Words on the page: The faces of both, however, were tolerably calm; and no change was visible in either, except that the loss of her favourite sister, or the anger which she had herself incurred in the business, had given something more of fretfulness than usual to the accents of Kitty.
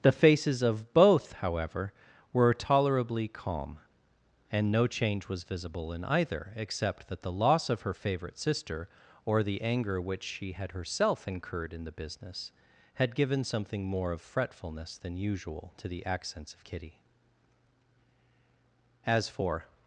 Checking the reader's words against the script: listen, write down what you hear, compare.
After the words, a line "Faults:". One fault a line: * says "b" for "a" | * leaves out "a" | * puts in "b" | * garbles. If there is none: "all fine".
The faces of both, however, were tolerably calm; and no change was visible in either, except that the loss of her favourite sister, or the anger which she had herself incurred in the business, had given something more of fretfulness than usual to the accents of Kitty. As for
Faults:
* puts in "As for"